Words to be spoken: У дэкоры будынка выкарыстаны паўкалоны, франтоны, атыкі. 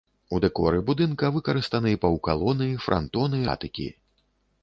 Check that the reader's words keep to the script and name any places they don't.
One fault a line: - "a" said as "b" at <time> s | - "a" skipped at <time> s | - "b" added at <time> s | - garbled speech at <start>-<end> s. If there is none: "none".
none